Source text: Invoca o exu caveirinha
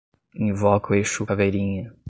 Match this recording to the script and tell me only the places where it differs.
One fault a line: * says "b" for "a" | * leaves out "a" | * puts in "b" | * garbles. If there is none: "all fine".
all fine